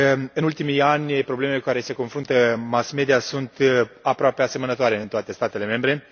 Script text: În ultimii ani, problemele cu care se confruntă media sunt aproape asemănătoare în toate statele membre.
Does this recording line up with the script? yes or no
no